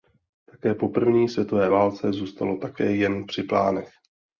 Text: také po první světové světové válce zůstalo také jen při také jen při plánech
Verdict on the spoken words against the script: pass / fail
fail